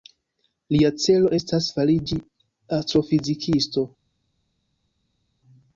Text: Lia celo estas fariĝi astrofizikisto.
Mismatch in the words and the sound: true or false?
false